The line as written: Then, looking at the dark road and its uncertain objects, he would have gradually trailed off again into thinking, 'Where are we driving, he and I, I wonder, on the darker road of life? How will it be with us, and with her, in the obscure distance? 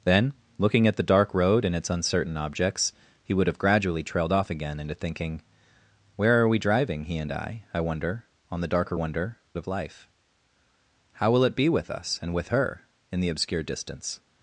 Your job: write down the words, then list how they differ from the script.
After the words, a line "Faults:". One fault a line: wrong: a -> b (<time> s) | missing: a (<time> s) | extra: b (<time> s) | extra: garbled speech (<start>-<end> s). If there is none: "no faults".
Then, looking at the dark road and its uncertain objects, he would have gradually trailed off again into thinking, 'Where are we driving, he and I, I wonder, on the darker wonder of life? How will it be with us, and with her, in the obscure distance?
Faults:
wrong: road -> wonder (8.9 s)